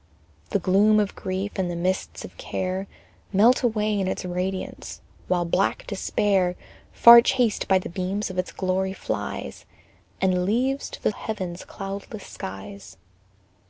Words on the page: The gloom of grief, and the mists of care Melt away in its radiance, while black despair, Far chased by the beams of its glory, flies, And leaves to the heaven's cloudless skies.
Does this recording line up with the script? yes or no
yes